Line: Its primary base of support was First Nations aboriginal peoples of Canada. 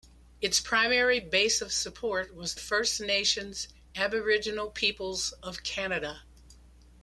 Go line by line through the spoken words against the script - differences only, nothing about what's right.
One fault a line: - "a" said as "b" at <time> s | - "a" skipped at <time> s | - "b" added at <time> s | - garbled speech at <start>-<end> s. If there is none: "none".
none